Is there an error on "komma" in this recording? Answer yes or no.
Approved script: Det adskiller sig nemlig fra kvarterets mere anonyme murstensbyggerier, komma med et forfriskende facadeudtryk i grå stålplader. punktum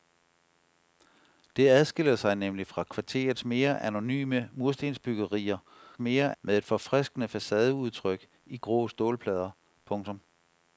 yes